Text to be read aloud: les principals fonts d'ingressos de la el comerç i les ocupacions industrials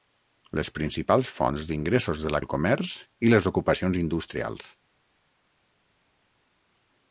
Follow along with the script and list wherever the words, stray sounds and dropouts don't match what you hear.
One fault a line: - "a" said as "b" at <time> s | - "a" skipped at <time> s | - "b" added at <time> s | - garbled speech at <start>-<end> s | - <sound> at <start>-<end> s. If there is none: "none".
none